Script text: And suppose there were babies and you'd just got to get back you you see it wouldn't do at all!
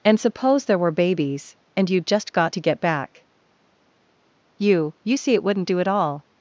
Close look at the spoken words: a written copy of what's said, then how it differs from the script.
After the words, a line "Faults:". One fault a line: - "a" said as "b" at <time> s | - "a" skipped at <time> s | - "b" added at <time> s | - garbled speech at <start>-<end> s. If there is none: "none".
And suppose there were babies and you'd just got to get back you you see it wouldn't do at all!
Faults:
none